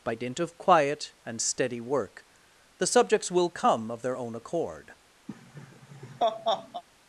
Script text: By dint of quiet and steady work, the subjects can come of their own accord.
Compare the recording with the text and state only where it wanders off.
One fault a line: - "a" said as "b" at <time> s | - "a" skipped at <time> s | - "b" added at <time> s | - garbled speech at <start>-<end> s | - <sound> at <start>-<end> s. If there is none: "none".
- "can" said as "will" at 3.3 s
- laugh at 5.3-6.8 s